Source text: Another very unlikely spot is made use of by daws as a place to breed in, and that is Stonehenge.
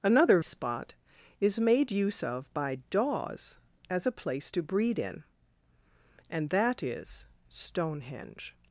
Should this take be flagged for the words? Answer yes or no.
yes